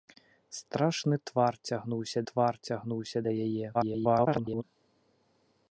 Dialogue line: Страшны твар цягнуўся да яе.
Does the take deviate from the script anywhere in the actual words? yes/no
yes